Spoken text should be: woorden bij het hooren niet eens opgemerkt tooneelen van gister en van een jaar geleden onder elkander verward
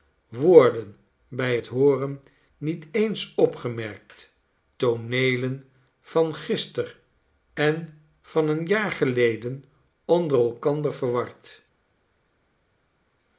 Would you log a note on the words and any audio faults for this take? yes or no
no